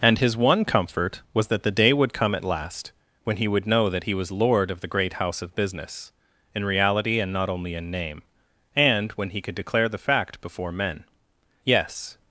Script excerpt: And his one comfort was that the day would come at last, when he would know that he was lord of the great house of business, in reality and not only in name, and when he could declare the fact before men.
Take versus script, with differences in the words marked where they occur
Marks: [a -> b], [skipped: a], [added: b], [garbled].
And his one comfort was that the day would come at last, when he would know that he was lord of the great house of business, in reality and not only in name, and when he could declare the fact before men. [added: Yes]